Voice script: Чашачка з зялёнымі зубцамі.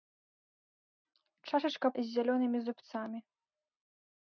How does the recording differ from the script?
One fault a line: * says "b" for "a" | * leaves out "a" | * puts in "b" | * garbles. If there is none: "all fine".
all fine